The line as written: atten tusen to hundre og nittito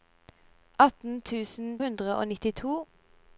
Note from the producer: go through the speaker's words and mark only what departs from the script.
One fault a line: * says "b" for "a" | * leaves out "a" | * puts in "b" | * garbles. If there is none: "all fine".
* leaves out "to"